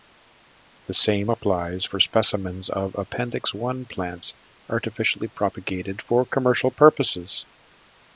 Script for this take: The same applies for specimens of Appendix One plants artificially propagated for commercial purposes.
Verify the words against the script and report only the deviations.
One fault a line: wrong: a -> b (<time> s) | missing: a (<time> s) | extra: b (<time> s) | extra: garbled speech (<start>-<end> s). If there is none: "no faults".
no faults